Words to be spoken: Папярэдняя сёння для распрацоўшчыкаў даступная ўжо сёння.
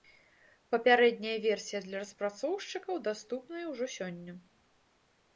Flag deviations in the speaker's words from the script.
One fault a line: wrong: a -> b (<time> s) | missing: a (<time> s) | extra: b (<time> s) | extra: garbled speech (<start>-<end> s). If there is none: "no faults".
wrong: сёння -> версія (1.4 s)